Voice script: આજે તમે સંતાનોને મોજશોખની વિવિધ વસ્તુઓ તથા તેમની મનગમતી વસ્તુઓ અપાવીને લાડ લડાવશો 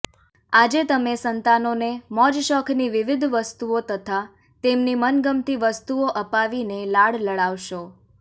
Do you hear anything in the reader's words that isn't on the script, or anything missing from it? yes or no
no